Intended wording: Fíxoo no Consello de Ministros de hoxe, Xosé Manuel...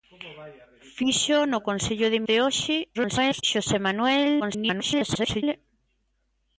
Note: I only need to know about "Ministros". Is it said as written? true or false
false